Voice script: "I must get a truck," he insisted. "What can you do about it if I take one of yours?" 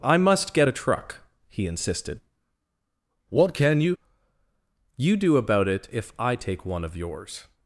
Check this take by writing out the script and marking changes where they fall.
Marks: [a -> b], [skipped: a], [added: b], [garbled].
"I must get a truck," he insisted. "What can you [added: you] do about it if I take one of yours?"